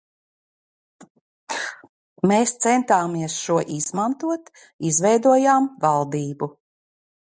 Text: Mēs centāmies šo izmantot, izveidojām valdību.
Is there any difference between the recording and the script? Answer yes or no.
no